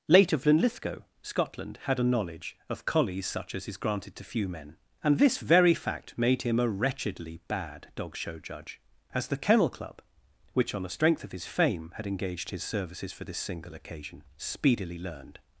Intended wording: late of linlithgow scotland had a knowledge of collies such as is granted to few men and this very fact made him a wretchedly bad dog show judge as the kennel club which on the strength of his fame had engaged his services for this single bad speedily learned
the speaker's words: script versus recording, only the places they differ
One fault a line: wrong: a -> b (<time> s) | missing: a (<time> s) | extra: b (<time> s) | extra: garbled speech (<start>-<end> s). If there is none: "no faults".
wrong: bad -> occasion (13.8 s)